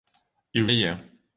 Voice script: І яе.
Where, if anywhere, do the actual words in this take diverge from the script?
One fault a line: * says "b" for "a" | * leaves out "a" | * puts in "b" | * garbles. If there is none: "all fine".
all fine